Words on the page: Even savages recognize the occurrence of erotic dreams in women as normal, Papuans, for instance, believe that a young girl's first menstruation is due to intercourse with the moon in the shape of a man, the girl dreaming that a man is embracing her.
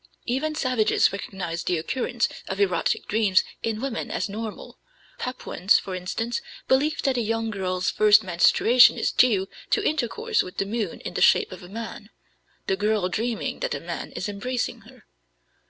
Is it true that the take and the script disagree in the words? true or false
false